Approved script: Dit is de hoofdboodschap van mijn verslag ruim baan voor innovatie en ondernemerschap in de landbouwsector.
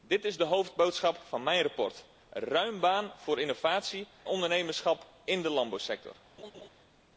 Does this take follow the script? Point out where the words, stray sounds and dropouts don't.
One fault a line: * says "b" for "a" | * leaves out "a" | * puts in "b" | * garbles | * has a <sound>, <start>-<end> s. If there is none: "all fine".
* leaves out "en"
* has a laugh, 6.4-6.7 s